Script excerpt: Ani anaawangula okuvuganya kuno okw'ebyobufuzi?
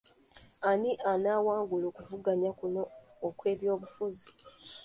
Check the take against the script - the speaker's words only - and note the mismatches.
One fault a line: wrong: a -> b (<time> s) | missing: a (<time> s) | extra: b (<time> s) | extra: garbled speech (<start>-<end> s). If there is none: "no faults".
no faults